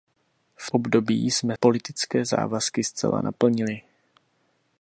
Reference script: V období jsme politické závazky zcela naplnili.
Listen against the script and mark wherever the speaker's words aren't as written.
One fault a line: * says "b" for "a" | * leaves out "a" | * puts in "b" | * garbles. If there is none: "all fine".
all fine